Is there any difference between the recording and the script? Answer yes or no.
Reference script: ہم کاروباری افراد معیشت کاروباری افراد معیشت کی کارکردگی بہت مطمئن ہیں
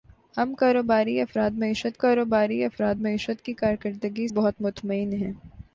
no